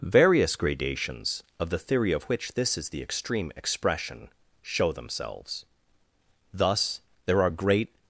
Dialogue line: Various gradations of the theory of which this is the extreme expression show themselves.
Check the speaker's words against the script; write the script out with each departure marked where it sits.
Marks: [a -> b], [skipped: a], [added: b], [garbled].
Various gradations of the theory of which this is the extreme expression show themselves. [added: Thus there are great]